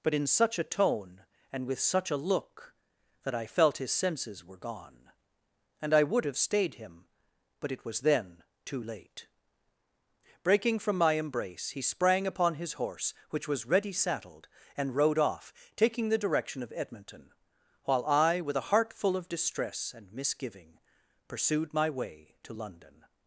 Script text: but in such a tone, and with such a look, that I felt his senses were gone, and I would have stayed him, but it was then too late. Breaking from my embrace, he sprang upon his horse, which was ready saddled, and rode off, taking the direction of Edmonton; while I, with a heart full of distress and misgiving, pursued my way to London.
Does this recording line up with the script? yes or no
yes